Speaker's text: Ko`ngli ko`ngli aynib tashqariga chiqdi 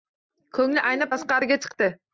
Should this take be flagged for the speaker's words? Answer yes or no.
yes